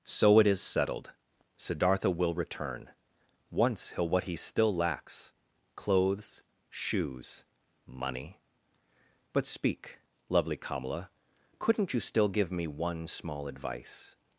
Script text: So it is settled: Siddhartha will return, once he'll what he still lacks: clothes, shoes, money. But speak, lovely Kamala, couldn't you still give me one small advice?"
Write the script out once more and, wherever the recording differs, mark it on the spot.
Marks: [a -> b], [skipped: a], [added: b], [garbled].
So it is settled: Siddhartha will return, once he'll what he still lacks: clothes, shoes, money. But speak, lovely Kamala, couldn't you still give me one small advice?"